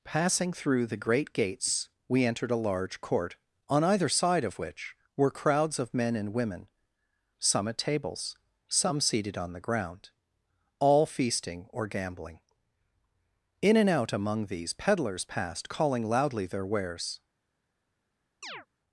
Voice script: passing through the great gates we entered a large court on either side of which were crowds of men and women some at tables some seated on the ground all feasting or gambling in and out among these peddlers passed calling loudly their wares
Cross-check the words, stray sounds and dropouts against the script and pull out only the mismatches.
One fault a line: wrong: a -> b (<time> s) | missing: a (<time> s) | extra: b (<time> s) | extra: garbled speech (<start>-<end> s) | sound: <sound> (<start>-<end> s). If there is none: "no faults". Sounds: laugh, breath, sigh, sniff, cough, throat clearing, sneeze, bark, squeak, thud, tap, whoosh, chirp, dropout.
sound: chirp (18.4-18.7 s)